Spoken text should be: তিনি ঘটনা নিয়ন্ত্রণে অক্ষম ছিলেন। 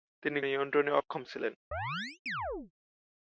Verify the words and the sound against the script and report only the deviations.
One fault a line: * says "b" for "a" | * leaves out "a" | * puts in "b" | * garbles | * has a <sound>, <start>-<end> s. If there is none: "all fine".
* leaves out "ঘটনা"
* has a chirp, 1.7-2.7 s